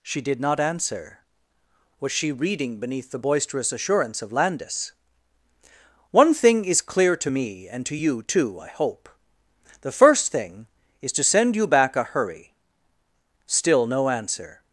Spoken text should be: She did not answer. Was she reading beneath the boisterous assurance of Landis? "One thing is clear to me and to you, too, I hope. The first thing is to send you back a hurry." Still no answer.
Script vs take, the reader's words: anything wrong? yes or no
no